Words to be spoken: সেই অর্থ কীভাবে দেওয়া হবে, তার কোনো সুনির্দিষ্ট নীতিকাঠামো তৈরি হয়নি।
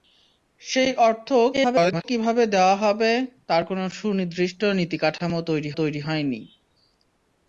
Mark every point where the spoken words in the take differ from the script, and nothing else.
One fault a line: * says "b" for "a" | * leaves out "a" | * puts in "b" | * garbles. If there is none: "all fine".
* garbles
* puts in "তৈরি"